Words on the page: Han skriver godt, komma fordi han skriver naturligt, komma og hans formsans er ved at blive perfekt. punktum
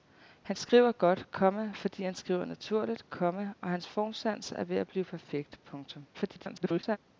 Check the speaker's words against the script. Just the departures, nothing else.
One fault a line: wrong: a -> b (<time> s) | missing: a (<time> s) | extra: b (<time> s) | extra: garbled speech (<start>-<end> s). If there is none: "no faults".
extra: garbled speech (6.1-7.0 s)